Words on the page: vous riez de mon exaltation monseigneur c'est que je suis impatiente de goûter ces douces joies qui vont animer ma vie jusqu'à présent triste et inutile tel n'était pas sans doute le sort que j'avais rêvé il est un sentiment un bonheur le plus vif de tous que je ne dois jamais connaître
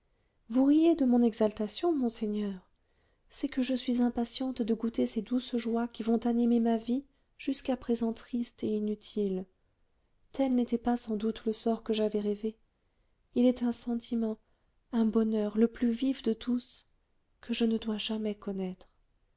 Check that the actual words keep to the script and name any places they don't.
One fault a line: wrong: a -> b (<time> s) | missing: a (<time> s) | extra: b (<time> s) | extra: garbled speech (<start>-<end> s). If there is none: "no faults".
no faults